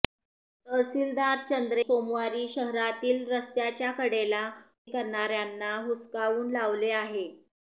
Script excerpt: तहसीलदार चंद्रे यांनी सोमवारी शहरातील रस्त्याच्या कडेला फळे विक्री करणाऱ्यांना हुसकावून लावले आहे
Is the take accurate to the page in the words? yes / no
no